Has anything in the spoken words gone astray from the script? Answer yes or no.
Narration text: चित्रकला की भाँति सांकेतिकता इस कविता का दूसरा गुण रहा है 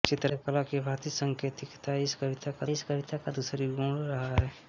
yes